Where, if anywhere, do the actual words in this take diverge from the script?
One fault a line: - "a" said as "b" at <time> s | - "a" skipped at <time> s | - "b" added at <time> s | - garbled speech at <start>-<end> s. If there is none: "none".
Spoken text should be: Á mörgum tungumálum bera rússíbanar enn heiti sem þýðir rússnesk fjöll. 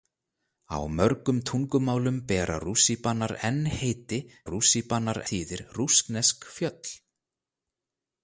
- "sem" said as "rússíbanar" at 4.5 s